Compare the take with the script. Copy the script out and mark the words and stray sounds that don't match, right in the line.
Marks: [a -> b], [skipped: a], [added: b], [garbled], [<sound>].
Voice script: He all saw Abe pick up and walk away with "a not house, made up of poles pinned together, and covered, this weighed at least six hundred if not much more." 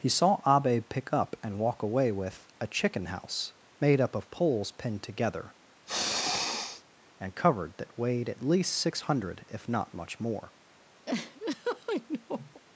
He [skipped: all] saw Abe pick up and walk away with "a [not -> chicken] house, made up of poles pinned together, [sniff] and covered, [this -> that] weighed at least six hundred if not much more." [laugh]